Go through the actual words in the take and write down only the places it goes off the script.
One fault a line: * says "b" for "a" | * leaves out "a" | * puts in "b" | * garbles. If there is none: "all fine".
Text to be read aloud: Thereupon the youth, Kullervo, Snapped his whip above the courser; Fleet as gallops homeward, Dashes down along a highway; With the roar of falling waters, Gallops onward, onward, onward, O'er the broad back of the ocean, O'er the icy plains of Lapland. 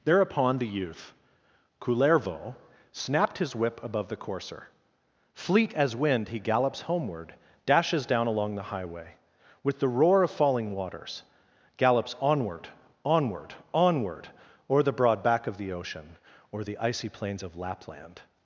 * puts in "wind he"
* says "the" for "a"